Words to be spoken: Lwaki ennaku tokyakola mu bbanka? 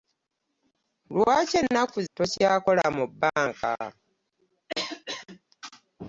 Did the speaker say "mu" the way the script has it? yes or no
yes